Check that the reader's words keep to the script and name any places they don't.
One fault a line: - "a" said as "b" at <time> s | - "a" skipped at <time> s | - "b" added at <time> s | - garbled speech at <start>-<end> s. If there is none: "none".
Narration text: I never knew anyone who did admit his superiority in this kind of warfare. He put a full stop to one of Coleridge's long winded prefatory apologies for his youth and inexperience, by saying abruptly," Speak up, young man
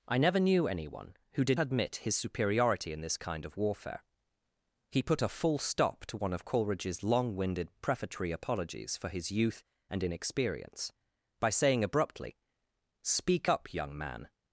none